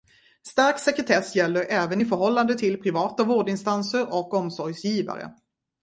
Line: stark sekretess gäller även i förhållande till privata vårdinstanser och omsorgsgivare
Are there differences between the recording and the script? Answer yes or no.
no